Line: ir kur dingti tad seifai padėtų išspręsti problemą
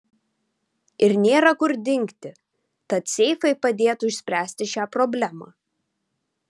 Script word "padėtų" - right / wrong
right